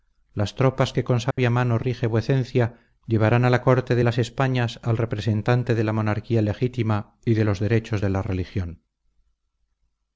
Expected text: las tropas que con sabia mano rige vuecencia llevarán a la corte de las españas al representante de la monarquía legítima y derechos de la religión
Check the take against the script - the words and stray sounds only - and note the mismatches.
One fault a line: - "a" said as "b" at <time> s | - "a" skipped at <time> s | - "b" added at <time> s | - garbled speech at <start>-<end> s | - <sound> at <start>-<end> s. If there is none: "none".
- dropout at 1.3-1.4 s
- "de los" added at 7.3 s